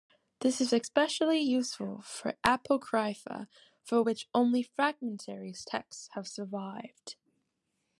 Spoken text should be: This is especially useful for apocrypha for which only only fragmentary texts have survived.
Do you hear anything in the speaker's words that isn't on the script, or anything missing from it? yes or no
yes